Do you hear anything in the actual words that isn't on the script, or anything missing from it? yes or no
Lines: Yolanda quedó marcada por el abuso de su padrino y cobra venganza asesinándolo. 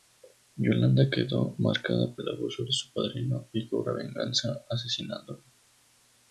yes